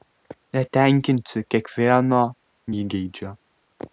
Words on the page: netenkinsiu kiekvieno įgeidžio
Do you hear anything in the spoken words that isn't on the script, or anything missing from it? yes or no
no